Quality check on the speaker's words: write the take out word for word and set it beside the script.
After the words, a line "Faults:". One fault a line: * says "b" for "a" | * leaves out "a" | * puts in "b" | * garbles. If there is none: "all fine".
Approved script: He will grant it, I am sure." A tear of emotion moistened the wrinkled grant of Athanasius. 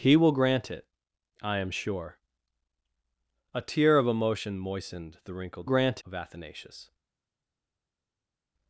He will grant it, I am sure." A tear of emotion moistened the wrinkled grant of Athanasius.
Faults:
all fine